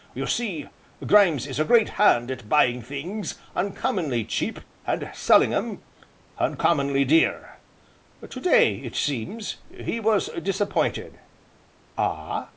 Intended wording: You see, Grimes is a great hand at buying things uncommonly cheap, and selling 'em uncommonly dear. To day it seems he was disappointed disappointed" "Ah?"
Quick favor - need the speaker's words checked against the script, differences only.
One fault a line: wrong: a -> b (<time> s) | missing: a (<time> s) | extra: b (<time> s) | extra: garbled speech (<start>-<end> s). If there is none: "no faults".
missing: disappointed (11.2 s)